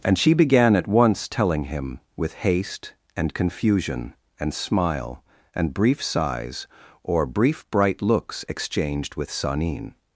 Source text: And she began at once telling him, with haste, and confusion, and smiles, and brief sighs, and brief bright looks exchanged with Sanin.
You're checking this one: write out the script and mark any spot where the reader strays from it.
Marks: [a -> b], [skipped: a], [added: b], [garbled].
And she began at once telling him, with haste, and confusion, and [smiles, -> smile] and brief sighs, [and -> or] brief bright looks exchanged with Sanin.